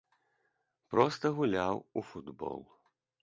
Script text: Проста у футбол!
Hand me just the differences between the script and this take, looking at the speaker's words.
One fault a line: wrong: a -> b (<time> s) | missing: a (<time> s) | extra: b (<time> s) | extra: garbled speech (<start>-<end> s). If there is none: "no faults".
extra: гуляў (1.4 s)